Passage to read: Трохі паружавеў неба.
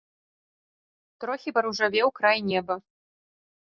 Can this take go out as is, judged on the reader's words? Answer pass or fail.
fail